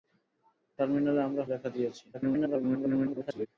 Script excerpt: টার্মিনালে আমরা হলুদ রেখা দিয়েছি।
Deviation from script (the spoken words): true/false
true